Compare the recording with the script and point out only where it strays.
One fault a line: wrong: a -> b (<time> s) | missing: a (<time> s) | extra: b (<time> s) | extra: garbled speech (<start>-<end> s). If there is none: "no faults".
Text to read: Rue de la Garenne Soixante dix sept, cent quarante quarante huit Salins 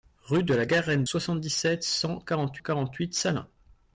no faults